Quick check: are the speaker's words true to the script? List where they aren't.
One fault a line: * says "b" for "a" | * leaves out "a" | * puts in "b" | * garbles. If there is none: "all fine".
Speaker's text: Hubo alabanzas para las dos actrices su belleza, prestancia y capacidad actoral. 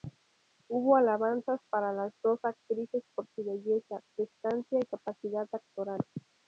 * puts in "por"